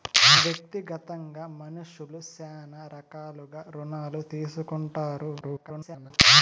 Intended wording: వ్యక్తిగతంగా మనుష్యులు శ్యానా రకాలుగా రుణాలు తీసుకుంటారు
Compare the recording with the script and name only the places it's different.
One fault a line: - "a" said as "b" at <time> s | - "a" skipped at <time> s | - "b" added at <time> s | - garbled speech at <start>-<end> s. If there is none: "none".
- garbled speech at 5.4-6.1 s